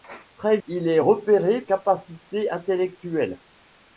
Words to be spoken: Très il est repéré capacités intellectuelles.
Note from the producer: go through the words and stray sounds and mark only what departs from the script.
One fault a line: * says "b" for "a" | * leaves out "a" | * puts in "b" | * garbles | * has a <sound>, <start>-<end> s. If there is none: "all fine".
all fine